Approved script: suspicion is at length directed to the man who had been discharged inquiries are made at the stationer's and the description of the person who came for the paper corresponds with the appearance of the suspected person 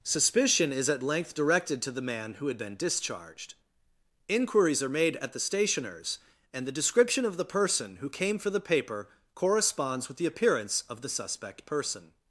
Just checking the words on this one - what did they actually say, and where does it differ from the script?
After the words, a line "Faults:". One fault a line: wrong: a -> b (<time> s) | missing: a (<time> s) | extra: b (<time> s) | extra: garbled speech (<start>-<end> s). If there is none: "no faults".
suspicion is at length directed to the man who had been discharged inquiries are made at the stationer's and the description of the person who came for the paper corresponds with the appearance of the suspect person
Faults:
wrong: suspected -> suspect (11.1 s)